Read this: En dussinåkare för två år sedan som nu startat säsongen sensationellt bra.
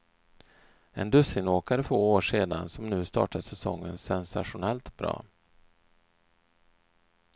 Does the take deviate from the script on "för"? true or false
true